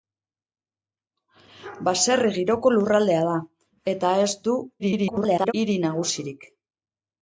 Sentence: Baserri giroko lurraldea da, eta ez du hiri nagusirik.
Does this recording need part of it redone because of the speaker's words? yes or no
yes